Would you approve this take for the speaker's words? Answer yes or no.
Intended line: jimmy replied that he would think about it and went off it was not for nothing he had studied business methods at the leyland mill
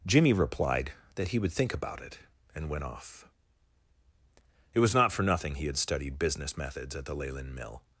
yes